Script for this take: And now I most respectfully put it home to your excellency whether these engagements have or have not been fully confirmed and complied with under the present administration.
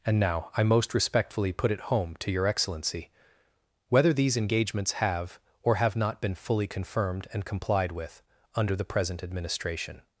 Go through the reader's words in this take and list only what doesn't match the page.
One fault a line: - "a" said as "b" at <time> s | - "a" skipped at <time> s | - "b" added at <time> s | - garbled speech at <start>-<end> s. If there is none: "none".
none